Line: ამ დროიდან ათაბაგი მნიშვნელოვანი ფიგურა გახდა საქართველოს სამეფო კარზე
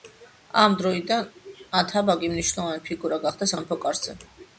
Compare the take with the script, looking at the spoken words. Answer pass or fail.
fail